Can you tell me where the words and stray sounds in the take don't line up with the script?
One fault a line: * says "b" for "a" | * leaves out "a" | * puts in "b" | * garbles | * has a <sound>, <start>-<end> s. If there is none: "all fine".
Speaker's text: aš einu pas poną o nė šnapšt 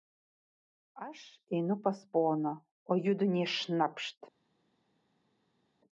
* puts in "judu"